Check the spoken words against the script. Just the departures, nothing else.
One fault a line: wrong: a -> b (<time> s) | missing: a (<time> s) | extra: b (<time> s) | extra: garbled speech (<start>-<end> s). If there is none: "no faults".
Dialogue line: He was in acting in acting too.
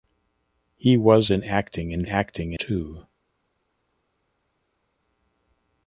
no faults